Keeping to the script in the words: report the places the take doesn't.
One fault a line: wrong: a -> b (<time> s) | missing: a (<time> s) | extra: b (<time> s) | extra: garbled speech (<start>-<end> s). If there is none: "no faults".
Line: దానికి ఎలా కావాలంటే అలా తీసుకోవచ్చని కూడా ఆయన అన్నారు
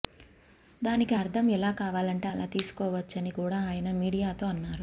extra: అర్థం (1.1 s)
extra: మీడియాతో (3.9 s)